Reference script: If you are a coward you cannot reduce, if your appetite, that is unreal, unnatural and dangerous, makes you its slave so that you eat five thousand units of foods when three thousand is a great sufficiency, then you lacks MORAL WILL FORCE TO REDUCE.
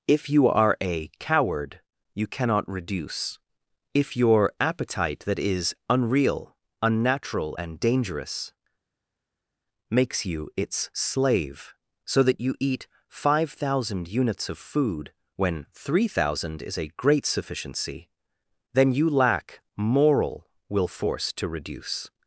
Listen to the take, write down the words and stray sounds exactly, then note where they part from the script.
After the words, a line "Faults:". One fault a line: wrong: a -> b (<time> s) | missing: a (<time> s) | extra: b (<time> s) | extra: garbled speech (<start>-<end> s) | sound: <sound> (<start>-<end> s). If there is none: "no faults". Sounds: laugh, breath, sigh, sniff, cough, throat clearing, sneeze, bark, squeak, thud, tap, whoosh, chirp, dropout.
If you are a coward you cannot reduce, if your appetite, that is unreal, unnatural and dangerous, makes you its slave so that you eat five thousand units of food when three thousand is a great sufficiency, then you lack MORAL WILL FORCE TO REDUCE.
Faults:
wrong: foods -> food (14.6 s)
wrong: lacks -> lack (19.1 s)